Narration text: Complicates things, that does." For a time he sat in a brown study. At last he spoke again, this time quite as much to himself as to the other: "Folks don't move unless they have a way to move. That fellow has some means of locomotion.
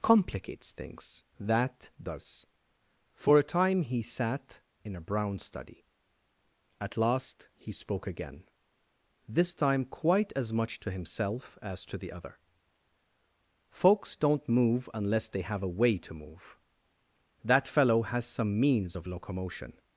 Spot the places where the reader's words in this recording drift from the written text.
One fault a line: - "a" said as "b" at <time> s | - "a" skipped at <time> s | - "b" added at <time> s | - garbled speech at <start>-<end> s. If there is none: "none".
none